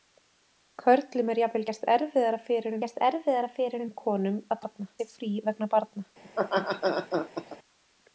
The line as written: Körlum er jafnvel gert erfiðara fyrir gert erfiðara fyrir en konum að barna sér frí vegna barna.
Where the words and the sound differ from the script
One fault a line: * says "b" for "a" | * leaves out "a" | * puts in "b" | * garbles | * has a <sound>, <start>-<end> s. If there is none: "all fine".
* has a laugh, 6.2-7.6 s